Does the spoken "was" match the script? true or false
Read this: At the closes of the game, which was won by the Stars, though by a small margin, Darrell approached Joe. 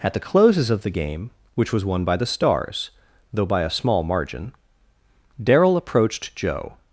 true